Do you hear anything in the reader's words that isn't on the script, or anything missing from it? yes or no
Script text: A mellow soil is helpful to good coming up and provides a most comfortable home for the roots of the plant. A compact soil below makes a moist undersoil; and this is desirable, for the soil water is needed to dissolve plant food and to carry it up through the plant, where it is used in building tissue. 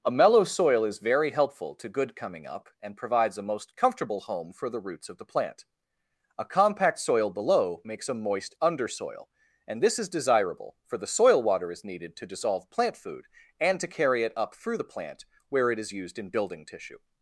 yes